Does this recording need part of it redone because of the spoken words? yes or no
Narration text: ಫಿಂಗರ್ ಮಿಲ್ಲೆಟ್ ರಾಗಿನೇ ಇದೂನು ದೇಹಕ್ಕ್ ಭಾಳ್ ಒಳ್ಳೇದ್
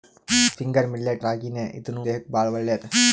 no